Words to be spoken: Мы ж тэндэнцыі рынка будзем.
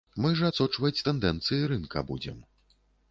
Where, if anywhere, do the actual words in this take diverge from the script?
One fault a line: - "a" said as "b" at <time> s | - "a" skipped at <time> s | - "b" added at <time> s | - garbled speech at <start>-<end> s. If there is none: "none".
- "адсочваць" added at 0.5 s